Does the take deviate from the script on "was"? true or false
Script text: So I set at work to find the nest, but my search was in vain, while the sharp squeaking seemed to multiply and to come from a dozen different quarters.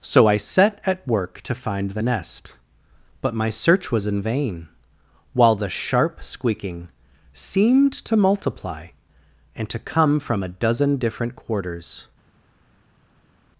false